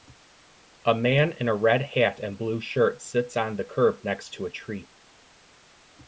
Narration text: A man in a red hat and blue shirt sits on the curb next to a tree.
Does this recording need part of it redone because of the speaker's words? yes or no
no